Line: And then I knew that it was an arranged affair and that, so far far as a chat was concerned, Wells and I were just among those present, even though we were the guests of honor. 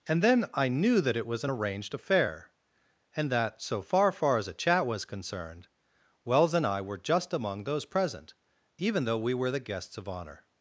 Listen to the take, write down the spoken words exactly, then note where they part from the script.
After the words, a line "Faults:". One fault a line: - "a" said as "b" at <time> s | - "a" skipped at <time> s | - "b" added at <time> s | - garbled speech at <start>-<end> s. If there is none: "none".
And then I knew that it was an arranged affair and that, so far far as a chat was concerned, Wells and I were just among those present, even though we were the guests of honor.
Faults:
none